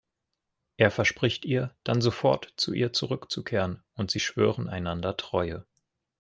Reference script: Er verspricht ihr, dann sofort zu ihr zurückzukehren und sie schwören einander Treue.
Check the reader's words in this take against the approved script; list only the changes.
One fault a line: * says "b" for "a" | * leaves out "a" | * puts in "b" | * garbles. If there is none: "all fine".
all fine